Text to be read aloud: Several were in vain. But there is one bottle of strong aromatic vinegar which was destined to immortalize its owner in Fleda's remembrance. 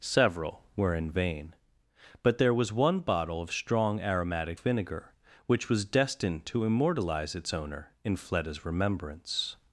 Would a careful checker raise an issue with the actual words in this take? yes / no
yes